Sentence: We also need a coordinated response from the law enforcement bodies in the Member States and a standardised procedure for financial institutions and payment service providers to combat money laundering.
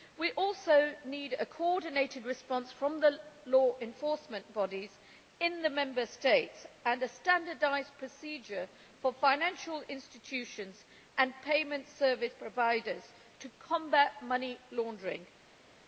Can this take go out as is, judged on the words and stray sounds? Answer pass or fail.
pass